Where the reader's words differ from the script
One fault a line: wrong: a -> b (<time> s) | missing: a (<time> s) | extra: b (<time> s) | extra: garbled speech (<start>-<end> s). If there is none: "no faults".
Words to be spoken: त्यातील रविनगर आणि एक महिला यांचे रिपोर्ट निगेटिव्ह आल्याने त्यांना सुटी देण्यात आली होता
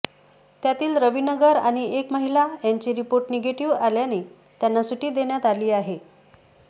wrong: होता -> आहे (5.7 s)